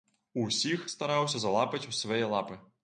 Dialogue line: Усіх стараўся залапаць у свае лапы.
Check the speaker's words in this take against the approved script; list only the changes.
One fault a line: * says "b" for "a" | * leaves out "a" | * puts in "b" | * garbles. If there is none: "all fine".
all fine